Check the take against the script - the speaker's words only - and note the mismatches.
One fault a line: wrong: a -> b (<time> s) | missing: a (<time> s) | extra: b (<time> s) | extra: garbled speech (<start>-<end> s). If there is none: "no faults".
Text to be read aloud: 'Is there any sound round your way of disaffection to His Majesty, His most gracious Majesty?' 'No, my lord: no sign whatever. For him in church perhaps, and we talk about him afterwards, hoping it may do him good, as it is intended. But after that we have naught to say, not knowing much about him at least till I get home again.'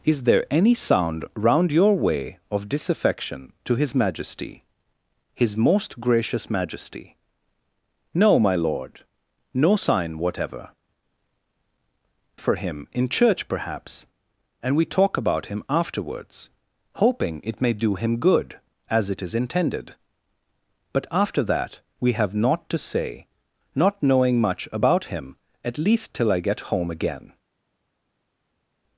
no faults